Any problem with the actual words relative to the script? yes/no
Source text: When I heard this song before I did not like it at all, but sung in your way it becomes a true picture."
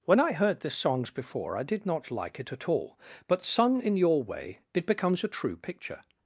yes